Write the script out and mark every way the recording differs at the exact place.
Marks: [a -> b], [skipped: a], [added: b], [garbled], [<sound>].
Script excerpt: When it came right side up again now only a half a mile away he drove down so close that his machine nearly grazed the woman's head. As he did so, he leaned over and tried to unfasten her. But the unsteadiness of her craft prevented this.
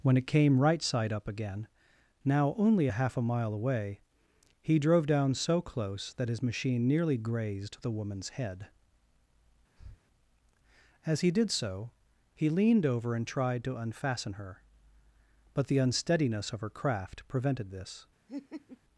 When it came right side up again now only a half a mile away he drove down so close that his machine nearly grazed the woman's head. [breath] As he did so, he leaned over and tried to unfasten her. But the unsteadiness of her craft prevented this. [laugh]